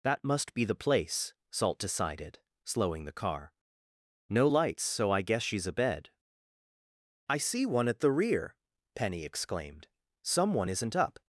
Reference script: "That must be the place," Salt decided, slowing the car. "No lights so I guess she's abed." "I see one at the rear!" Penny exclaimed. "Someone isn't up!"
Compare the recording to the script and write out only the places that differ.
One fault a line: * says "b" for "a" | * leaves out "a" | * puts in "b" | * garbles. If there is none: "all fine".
all fine